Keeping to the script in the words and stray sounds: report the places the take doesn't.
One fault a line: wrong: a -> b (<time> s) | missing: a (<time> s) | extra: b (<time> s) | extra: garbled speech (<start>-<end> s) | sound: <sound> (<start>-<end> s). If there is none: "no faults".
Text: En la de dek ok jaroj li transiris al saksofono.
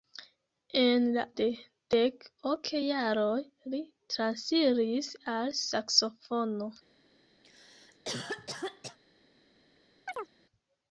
sound: cough (7.4-9.0 s)
sound: chirp (10.1-10.3 s)